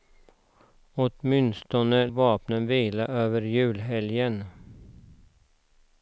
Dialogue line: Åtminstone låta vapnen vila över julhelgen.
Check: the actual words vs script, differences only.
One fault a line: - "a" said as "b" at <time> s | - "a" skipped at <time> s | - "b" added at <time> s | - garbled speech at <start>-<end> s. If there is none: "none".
- "låta" skipped at 2.1 s